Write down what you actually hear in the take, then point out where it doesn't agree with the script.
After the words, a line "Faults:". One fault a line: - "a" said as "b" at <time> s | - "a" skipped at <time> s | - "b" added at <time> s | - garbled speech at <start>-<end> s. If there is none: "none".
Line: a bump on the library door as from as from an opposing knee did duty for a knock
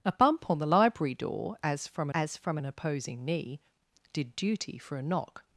a bump on the library door as from as from an opposing knee did duty for a knock
Faults:
none